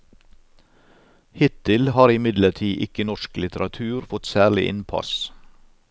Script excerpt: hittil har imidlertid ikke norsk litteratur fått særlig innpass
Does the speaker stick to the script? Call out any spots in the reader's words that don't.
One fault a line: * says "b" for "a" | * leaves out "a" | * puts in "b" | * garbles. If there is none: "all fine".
all fine